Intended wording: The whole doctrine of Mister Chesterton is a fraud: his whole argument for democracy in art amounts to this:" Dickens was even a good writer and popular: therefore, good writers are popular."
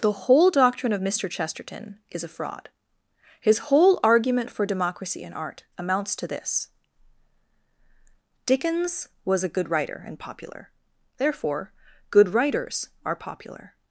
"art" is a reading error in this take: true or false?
false